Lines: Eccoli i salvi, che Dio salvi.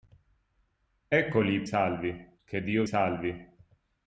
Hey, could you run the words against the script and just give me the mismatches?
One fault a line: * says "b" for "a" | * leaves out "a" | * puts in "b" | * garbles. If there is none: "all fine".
all fine